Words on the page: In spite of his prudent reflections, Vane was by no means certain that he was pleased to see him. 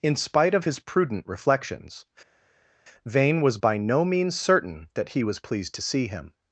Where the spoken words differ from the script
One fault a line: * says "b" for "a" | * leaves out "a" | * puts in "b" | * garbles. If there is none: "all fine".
all fine